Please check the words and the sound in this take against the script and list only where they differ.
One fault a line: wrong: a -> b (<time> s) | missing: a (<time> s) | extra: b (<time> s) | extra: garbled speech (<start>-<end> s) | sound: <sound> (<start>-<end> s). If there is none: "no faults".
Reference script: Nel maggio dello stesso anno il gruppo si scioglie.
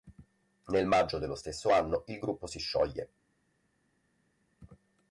no faults